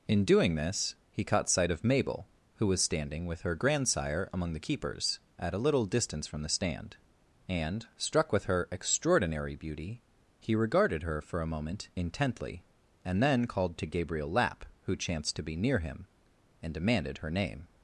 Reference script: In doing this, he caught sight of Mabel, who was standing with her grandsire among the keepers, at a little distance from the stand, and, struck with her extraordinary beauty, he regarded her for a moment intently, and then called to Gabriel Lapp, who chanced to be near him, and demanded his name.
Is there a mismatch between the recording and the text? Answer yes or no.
yes